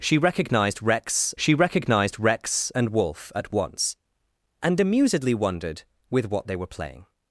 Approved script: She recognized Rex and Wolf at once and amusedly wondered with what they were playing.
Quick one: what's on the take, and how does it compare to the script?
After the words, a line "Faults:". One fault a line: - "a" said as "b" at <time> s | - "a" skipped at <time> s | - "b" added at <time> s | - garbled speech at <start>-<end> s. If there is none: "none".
She recognized Rex she recognized Rex and Wolf at once and amusedly wondered with what they were playing.
Faults:
- "she recognized Rex" added at 1.4 s